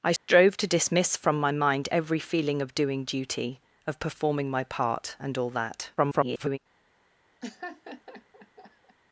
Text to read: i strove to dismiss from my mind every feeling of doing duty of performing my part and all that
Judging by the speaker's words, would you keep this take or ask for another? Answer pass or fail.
fail